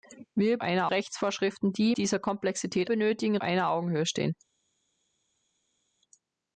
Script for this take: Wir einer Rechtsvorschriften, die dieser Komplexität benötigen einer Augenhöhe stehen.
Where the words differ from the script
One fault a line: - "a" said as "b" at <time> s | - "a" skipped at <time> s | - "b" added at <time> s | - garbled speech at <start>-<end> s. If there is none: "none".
none